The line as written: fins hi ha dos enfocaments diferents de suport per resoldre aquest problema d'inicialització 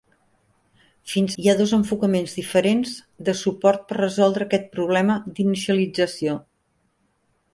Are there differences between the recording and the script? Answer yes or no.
no